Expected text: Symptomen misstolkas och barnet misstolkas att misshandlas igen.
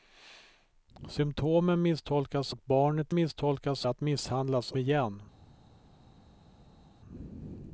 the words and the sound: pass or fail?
pass